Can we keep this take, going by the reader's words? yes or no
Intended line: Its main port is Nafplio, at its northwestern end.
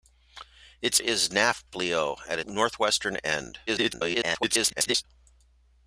no